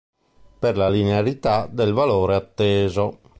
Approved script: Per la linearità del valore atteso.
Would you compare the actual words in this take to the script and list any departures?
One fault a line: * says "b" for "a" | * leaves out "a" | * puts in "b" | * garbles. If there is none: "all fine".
all fine